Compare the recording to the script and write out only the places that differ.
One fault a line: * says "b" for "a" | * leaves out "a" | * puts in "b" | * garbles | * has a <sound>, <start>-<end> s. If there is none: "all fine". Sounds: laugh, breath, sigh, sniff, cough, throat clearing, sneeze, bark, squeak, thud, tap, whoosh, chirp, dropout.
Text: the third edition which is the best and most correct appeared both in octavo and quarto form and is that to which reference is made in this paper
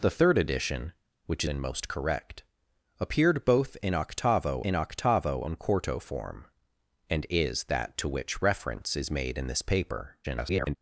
* leaves out "is the best"
* puts in "in octavo"
* garbles